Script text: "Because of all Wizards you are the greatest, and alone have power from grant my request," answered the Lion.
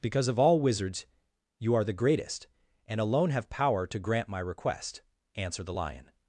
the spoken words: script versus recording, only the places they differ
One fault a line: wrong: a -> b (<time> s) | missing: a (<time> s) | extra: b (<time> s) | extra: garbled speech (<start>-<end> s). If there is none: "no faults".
wrong: from -> to (3.9 s)